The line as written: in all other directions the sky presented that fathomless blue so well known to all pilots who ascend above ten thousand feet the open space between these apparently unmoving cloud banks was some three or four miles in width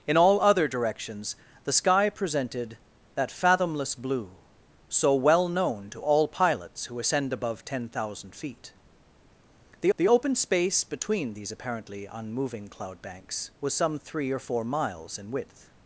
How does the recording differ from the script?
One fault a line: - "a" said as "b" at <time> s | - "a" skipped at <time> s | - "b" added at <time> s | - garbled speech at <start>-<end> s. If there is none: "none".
- "the" added at 9.9 s